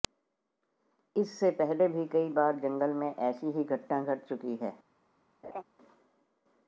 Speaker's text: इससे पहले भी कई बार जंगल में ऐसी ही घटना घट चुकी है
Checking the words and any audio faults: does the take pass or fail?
fail